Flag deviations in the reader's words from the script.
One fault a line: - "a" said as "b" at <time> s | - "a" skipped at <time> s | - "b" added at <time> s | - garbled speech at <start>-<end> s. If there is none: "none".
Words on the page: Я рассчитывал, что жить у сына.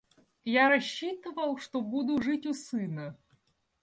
- "буду" added at 1.8 s